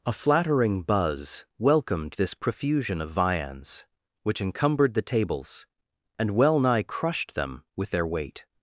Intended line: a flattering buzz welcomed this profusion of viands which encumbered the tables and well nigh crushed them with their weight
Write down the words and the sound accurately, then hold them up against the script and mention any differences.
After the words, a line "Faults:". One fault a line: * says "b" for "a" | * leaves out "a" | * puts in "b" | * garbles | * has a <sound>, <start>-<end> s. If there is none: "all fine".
a flattering buzz welcomed this profusion of viands which encumbered the tables and well nigh crushed them with their weight
Faults:
all fine